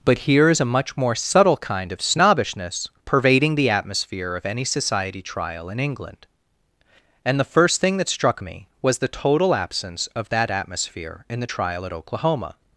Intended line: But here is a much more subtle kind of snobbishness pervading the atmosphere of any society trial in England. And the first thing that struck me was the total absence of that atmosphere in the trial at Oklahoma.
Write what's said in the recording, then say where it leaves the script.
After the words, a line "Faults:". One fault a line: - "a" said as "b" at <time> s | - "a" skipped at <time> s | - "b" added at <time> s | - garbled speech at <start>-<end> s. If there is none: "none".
But here is a much more subtle kind of snobbishness pervading the atmosphere of any society trial in England. And the first thing that struck me was the total absence of that atmosphere in the trial at Oklahoma.
Faults:
none